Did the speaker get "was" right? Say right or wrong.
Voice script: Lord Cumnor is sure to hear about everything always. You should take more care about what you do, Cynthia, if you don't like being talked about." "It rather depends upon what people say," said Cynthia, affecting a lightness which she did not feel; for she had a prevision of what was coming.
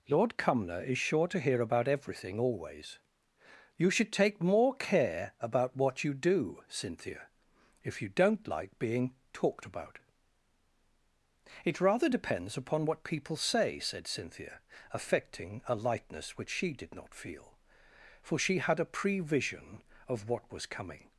right